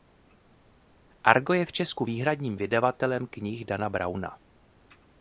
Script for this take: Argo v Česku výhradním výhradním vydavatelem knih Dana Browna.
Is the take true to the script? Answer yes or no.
no